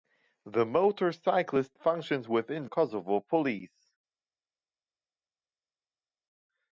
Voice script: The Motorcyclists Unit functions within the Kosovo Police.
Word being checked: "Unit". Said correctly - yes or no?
no